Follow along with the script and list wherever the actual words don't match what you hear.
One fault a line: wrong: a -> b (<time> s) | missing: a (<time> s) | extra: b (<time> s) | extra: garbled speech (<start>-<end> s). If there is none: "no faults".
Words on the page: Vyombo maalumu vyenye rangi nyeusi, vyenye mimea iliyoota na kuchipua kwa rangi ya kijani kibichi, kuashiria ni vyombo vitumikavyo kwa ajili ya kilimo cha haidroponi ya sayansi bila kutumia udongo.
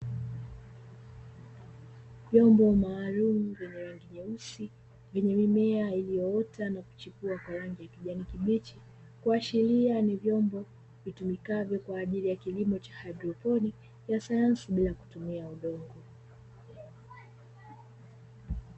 no faults